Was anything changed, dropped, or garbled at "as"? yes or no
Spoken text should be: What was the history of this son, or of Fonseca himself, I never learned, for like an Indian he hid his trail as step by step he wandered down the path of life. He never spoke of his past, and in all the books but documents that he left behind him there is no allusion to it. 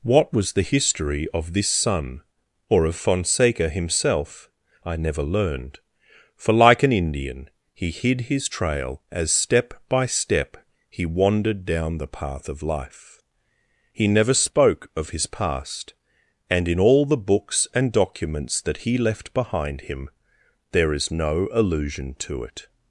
no